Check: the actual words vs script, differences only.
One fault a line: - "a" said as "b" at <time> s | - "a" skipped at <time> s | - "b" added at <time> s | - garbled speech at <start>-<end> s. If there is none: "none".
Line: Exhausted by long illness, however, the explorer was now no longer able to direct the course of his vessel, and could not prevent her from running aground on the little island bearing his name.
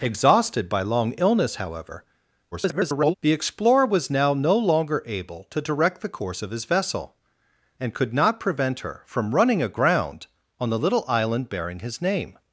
- garbled speech at 2.5-3.1 s